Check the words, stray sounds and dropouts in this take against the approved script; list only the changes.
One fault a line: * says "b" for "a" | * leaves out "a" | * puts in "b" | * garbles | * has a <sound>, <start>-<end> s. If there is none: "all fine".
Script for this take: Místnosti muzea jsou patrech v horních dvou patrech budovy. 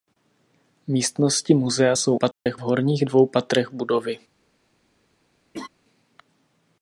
* has a dropout, 2.3-2.5 s
* has a laugh, 5.5-5.7 s